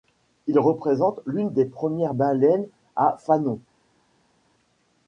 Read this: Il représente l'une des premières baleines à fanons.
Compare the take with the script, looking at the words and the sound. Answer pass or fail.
pass